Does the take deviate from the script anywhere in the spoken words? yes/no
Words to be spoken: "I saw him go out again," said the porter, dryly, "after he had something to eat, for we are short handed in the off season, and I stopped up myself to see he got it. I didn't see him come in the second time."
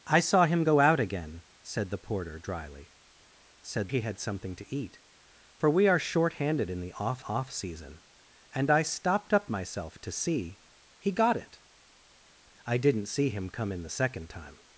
yes